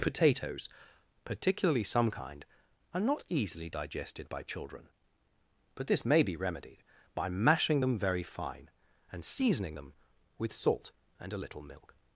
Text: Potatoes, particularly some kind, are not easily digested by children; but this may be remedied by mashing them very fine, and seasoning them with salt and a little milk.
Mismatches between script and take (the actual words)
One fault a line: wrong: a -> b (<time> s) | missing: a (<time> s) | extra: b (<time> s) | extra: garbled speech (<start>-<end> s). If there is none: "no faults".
no faults